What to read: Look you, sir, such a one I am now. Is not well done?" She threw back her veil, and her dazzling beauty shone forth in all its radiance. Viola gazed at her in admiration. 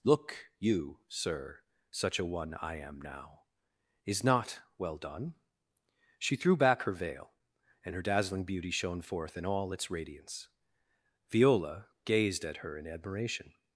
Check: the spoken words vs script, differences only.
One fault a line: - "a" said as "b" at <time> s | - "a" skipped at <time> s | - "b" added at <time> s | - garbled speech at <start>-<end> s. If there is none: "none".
none